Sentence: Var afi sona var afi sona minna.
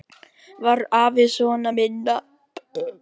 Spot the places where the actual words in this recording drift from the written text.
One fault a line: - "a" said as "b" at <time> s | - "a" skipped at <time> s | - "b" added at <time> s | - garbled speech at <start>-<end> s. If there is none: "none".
- "var afi sona" skipped at 1.7 s